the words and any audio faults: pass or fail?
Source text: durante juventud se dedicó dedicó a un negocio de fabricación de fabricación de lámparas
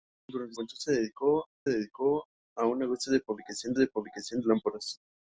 pass